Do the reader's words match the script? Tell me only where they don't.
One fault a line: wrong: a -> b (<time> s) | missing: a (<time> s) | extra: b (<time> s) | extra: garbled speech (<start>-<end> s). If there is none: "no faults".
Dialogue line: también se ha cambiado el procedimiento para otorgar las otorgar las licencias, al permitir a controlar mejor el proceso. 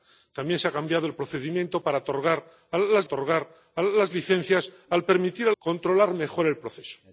no faults